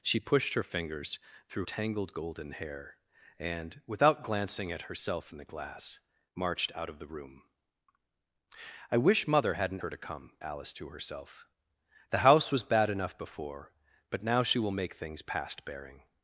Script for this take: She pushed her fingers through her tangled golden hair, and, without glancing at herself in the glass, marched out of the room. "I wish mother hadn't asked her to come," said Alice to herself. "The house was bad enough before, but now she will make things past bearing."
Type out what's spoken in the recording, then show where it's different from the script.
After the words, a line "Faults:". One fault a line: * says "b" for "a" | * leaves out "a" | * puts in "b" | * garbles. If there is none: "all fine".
She pushed her fingers through tangled golden hair, and, without glancing at herself in the glass, marched out of the room. "I wish mother hadn't her to come," Alice to herself. "The house was bad enough before, but now she will make things past bearing."
Faults:
* leaves out "her"
* leaves out "asked"
* leaves out "said"